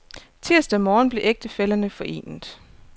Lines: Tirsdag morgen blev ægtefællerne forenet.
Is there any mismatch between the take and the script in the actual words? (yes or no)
no